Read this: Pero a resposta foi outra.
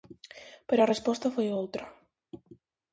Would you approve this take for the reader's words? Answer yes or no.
yes